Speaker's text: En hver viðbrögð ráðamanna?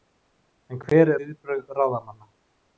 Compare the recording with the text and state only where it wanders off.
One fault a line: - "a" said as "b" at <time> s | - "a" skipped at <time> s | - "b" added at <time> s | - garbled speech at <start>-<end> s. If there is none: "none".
none